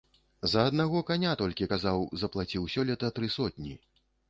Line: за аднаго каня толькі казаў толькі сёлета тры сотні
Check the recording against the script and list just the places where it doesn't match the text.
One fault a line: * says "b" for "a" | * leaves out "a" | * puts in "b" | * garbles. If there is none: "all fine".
* says "заплаціў" for "толькі"